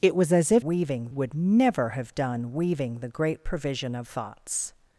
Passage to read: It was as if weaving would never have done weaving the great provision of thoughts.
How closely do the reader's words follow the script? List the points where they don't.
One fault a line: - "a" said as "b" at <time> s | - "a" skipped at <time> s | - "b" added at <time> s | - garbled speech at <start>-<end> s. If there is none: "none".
none